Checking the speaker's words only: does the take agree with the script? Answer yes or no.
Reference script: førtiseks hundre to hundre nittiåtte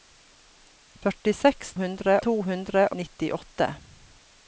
yes